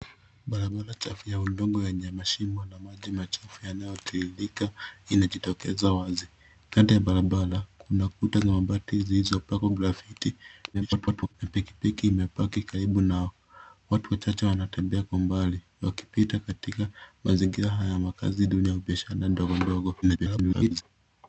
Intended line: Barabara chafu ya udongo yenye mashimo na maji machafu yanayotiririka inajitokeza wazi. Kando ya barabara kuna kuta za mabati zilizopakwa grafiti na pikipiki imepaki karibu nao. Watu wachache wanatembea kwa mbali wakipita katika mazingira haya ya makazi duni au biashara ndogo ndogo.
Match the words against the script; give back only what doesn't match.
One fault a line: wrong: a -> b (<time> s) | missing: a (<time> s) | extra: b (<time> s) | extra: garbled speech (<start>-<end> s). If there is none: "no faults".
extra: garbled speech (10.7-11.3 s)
extra: garbled speech (20.0-20.8 s)